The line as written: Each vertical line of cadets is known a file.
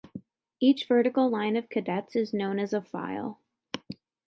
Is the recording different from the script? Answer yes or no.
yes